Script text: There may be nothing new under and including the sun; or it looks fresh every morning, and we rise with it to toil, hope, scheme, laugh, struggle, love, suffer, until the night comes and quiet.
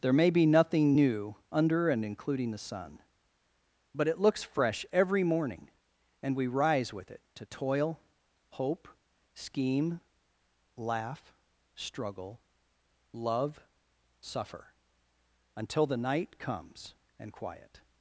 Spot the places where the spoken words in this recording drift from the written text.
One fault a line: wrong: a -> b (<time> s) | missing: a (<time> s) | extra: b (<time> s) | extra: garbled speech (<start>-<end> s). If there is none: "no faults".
wrong: or -> but (3.9 s)